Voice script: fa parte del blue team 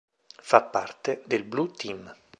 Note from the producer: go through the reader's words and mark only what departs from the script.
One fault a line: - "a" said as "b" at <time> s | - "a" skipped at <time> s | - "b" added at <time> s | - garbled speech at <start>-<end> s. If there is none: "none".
none